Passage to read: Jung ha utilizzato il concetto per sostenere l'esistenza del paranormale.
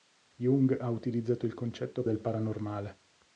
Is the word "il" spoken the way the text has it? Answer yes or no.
yes